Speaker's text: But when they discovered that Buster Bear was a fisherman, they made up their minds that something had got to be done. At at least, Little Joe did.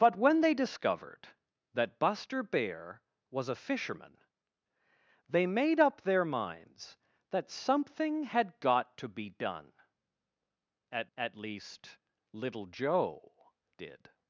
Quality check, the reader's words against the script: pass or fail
pass